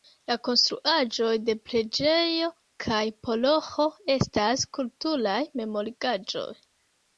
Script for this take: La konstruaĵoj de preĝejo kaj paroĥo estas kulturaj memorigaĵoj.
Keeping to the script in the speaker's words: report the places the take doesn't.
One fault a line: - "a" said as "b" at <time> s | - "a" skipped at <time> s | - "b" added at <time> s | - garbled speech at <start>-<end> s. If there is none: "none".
none